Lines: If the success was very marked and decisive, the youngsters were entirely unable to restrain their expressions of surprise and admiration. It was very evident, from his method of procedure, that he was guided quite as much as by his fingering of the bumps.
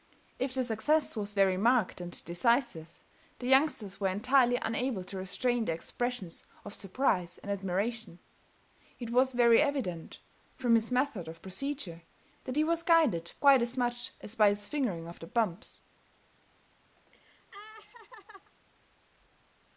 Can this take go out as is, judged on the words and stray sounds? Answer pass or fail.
fail